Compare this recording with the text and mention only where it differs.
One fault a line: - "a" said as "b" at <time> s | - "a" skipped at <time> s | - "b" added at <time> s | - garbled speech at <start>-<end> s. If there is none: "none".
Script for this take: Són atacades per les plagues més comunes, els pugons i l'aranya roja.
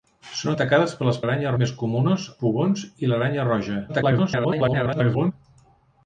- "plagues" said as "l'aranya" at 1.2 s
- "els" skipped at 2.3 s
- garbled speech at 3.9-5.3 s